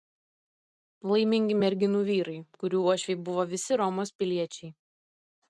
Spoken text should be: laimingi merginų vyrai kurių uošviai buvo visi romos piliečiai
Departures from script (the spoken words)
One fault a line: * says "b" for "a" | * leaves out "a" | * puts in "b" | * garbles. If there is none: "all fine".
all fine